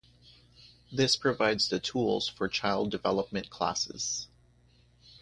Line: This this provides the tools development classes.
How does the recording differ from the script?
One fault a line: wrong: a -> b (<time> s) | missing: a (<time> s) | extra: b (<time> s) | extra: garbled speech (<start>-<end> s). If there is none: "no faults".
missing: this (1.1 s)
extra: for child (2.3 s)